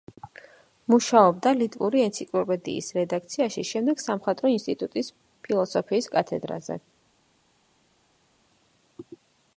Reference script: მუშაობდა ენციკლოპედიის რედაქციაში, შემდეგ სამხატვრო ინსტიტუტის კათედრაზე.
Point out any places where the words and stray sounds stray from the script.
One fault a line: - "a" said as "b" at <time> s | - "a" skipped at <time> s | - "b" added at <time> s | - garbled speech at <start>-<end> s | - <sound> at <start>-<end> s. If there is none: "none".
- "ლიტვური" added at 1.6 s
- "ფილოსოფიის" added at 5.5 s